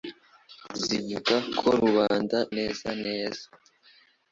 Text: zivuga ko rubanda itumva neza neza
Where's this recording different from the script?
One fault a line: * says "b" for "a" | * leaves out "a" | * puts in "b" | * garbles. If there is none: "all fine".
* leaves out "itumva"